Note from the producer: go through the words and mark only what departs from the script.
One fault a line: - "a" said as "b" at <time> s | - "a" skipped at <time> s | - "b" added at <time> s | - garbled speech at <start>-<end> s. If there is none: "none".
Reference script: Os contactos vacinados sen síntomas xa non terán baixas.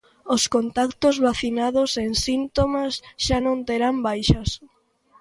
none